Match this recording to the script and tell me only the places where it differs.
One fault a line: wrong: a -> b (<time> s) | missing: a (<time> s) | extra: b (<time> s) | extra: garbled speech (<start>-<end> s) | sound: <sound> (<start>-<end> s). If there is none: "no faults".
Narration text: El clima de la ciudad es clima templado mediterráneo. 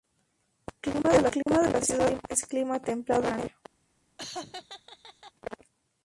sound: dropout (1.4-1.5 s)
sound: laugh (4.2-5.3 s)